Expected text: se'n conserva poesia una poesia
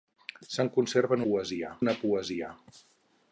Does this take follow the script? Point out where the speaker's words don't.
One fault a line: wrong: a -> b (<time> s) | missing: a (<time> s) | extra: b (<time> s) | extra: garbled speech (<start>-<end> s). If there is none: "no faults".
no faults